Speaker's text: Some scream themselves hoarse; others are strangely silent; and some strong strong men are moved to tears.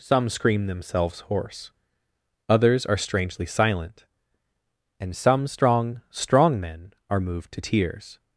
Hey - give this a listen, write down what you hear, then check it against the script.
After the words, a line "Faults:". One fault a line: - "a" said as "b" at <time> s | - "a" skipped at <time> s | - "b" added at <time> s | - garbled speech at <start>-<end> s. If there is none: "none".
Some scream themselves hoarse; others are strangely silent; and some strong strong men are moved to tears.
Faults:
none